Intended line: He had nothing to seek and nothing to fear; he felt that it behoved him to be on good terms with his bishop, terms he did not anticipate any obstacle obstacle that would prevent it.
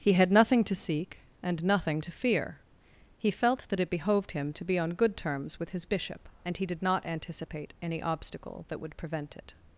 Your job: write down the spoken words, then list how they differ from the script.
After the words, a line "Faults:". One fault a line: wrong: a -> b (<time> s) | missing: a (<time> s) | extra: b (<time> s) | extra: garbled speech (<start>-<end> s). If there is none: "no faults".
He had nothing to seek and nothing to fear; he felt that it behoved him to be on good terms with his bishop, and he did not anticipate any obstacle that would prevent it.
Faults:
wrong: terms -> and (6.4 s)
missing: obstacle (8.6 s)